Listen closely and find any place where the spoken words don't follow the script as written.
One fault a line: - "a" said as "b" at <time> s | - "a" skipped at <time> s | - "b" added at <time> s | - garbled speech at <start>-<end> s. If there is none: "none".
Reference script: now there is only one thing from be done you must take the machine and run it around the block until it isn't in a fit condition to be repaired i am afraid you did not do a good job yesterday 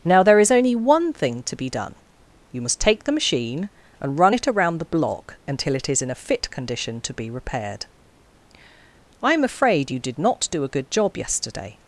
- "from" said as "to" at 1.4 s
- "isn't" said as "is" at 5.9 s